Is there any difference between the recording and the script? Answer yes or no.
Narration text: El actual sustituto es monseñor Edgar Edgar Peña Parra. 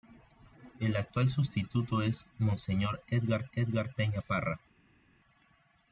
no